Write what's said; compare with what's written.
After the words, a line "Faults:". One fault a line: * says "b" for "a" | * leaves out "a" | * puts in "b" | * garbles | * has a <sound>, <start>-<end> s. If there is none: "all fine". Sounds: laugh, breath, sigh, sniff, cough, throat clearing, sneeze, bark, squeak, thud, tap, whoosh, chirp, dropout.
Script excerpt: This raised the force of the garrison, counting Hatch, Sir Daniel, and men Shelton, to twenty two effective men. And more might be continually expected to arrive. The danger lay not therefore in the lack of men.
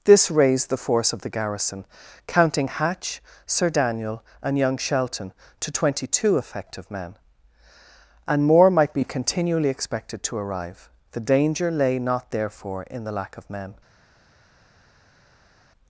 This raised the force of the garrison, counting Hatch, Sir Daniel, and young Shelton, to twenty two effective men. And more might be continually expected to arrive. The danger lay not therefore in the lack of men.
Faults:
* says "young" for "men"